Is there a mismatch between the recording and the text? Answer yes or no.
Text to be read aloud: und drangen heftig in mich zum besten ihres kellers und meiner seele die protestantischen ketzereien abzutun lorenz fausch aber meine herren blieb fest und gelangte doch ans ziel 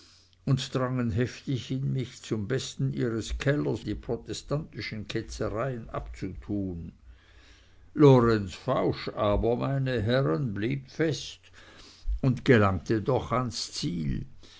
yes